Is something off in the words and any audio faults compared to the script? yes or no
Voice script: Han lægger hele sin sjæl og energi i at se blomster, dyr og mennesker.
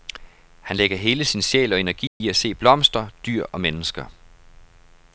yes